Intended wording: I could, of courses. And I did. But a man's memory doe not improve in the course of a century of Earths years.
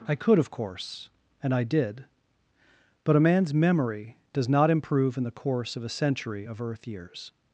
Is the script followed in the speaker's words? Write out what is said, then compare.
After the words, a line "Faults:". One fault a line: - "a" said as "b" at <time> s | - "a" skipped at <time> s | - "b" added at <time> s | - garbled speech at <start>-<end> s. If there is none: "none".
I could, of course. And I did. But a man's memory does not improve in the course of a century of Earth years.
Faults:
- "courses" said as "course" at 0.5 s
- "doe" said as "does" at 4.3 s
- "Earths" said as "Earth" at 6.6 s